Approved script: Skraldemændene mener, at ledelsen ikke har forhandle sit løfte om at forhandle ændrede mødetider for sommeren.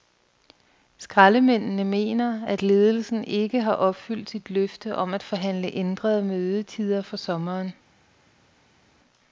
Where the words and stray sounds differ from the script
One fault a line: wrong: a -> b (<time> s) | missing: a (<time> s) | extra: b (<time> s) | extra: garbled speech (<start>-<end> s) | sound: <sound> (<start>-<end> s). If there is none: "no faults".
wrong: forhandle -> opfyldt (3.7 s)